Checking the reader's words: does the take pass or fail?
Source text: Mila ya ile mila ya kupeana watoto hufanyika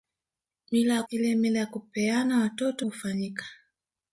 pass